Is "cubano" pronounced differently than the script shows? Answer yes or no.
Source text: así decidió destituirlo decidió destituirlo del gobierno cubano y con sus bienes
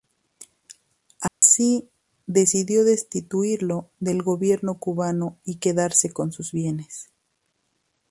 no